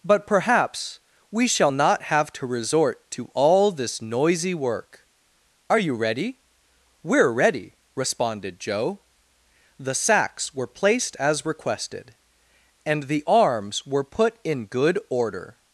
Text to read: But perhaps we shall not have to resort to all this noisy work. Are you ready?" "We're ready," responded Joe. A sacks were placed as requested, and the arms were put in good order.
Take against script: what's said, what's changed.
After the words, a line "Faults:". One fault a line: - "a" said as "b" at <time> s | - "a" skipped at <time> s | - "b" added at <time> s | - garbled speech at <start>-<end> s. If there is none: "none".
But perhaps we shall not have to resort to all this noisy work. Are you ready?" "We're ready," responded Joe. The sacks were placed as requested, and the arms were put in good order.
Faults:
- "A" said as "The" at 9.8 s